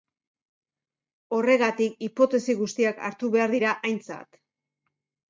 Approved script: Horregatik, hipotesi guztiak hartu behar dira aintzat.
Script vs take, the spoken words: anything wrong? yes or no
no